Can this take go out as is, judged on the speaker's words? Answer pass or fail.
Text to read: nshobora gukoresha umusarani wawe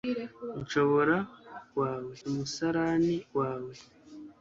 fail